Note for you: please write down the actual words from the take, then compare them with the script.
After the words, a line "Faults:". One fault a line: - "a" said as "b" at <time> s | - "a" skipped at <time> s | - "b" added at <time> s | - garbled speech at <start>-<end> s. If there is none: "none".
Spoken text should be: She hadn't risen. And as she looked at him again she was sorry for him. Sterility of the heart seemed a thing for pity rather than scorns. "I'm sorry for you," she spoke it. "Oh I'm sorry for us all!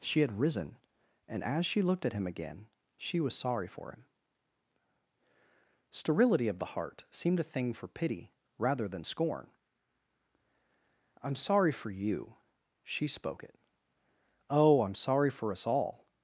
She had risen. And as she looked at him again she was sorry for him. Sterility of the heart seemed a thing for pity rather than scorn. "I'm sorry for you," she spoke it. "Oh I'm sorry for us all!
Faults:
- "hadn't" said as "had" at 0.2 s
- "scorns" said as "scorn" at 9.0 s